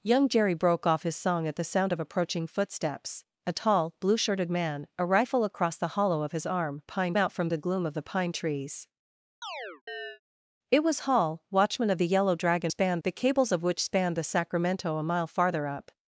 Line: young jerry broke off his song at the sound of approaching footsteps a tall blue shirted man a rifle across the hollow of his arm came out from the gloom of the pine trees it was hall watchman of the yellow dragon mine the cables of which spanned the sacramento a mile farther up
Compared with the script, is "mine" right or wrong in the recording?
wrong